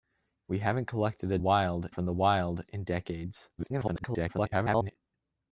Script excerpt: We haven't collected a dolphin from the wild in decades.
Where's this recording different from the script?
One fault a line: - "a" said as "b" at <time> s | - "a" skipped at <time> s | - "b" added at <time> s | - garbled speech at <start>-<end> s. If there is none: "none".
- "dolphin" said as "wild" at 1.4 s
- garbled speech at 3.6-5.0 s